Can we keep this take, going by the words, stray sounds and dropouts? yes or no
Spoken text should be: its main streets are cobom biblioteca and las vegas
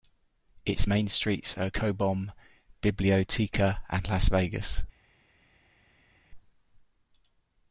yes